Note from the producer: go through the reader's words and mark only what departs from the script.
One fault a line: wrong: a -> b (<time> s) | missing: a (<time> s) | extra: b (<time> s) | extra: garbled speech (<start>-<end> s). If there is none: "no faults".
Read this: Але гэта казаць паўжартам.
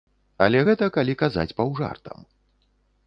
extra: калі (1.0 s)